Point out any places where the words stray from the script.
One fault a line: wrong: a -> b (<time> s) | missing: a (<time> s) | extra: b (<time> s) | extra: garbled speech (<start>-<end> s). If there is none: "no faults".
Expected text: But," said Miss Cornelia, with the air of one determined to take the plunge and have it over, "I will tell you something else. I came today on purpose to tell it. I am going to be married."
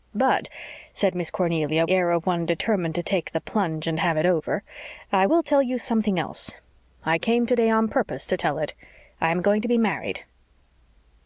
missing: with the (1.9 s)